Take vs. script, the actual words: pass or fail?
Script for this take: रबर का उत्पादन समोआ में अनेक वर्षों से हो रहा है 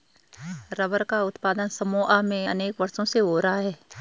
pass